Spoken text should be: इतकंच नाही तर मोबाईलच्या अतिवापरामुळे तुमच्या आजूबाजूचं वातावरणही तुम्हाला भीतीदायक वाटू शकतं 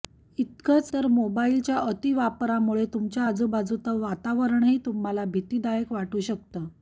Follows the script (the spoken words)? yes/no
no